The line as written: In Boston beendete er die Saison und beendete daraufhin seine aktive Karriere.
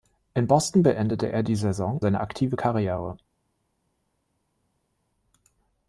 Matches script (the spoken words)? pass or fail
fail